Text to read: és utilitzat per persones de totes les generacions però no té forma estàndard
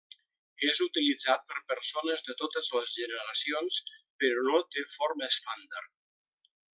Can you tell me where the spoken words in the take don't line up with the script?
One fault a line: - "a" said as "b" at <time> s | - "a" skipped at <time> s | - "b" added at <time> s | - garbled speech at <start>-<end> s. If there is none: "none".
none